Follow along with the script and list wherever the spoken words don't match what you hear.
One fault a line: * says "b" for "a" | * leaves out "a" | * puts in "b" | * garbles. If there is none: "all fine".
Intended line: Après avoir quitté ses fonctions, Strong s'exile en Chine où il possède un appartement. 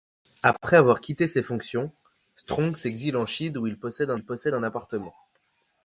* puts in "il possède un"